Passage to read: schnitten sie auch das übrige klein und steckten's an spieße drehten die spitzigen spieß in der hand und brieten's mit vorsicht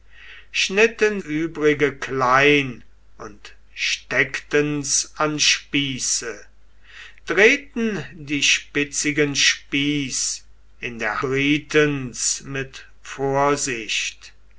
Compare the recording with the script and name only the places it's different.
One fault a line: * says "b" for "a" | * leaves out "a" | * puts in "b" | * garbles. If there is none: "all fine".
* leaves out "sie auch das"
* leaves out "hand und"